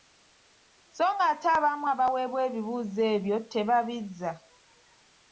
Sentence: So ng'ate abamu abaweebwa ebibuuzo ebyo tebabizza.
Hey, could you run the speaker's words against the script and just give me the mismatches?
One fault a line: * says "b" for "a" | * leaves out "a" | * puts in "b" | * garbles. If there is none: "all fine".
all fine